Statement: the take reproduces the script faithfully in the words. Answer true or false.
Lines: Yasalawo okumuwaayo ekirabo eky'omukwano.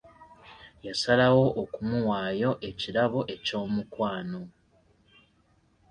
true